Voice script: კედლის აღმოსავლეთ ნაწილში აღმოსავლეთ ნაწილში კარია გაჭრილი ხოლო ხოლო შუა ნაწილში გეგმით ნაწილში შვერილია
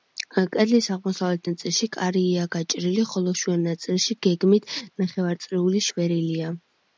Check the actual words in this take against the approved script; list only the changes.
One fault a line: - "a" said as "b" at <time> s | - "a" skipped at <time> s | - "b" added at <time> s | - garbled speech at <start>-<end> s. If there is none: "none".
- "აღმოსავლეთ ნაწილში" skipped at 1.9 s
- "ხოლო" skipped at 3.3 s
- "ნაწილში" said as "ნახევარწრიული" at 5.0 s